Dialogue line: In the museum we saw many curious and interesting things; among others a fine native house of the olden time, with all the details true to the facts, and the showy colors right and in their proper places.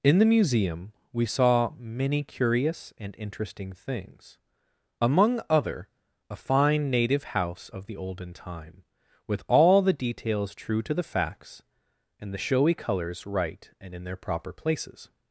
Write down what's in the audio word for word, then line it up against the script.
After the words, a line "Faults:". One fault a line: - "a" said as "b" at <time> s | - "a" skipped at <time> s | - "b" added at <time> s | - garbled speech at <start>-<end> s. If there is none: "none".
In the museum we saw many curious and interesting things; among other a fine native house of the olden time, with all the details true to the facts, and the showy colors right and in their proper places.
Faults:
- "others" said as "other" at 5.5 s